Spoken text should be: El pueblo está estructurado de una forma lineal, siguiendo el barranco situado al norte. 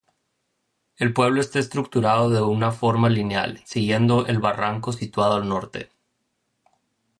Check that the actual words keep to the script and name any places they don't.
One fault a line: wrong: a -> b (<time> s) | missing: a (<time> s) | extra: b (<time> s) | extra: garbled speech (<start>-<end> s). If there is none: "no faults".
no faults